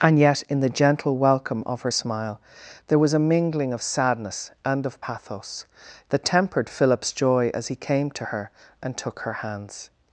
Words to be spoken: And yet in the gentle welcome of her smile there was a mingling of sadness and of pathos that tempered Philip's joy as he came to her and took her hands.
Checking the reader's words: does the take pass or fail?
pass